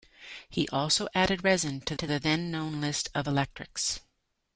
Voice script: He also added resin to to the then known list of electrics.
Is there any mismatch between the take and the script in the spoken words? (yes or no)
no